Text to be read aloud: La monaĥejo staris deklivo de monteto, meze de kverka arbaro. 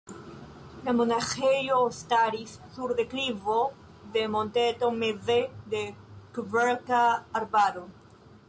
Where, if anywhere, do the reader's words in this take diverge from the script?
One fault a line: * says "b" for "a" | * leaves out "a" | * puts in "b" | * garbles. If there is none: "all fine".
* puts in "sur"